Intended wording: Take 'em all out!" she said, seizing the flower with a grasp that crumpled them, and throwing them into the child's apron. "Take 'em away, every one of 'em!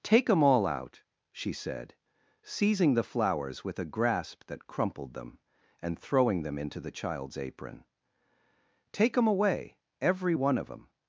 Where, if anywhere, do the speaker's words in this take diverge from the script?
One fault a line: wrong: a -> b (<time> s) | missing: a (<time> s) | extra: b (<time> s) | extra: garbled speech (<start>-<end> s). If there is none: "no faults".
wrong: flower -> flowers (3.0 s)